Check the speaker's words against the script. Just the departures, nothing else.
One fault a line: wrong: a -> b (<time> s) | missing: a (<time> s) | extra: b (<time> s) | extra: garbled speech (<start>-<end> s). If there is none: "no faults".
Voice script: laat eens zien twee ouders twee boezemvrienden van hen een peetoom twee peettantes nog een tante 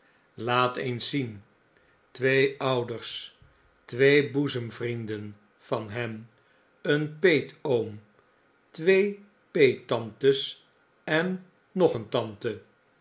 extra: en (11.0 s)